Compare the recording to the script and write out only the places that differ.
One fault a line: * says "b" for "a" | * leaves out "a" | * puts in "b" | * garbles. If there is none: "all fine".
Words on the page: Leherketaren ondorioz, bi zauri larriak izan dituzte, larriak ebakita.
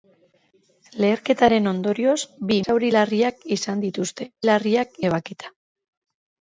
all fine